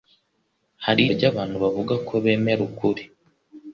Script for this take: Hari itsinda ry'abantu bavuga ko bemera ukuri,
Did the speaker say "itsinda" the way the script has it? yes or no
no